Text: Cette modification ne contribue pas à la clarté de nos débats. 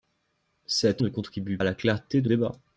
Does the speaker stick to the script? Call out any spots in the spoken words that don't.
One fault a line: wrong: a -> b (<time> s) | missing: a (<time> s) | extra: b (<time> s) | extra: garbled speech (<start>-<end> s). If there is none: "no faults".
missing: modification (1.0 s)
missing: pas (1.6 s)
missing: nos (2.3 s)